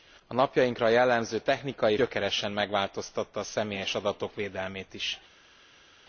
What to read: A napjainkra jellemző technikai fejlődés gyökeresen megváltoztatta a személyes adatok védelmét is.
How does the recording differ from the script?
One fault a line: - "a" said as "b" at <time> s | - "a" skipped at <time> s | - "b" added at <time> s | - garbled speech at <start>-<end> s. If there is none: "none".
- "fejlődés" skipped at 2.0 s